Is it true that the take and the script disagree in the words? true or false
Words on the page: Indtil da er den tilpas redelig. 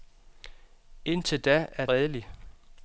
true